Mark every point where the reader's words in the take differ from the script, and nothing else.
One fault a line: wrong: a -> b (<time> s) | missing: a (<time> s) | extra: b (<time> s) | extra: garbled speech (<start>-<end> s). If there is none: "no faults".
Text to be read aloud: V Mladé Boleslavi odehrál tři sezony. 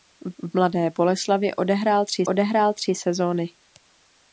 extra: v (0.4 s)
extra: odehrál tři (2.2 s)